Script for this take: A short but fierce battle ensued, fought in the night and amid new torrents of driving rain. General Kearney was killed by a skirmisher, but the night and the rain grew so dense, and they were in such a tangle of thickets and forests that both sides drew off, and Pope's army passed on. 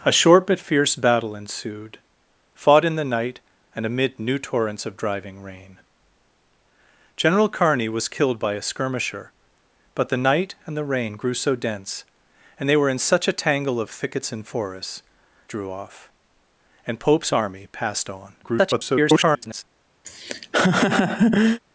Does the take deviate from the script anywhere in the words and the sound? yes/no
yes